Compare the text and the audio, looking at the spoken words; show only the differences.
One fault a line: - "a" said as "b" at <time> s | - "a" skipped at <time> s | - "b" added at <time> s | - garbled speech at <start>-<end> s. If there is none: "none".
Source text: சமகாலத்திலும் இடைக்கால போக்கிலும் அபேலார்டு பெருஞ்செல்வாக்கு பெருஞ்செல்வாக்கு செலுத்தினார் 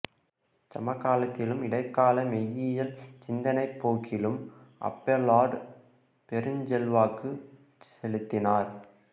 - "மெய்யியல் சிந்தனைப்" added at 2.3 s
- "பெருஞ்செல்வாக்கு" skipped at 7.3 s